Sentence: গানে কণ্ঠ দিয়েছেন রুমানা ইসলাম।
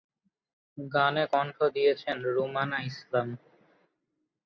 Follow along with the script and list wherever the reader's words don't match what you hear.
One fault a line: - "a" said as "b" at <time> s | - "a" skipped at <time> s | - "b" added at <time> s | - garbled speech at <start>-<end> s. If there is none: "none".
none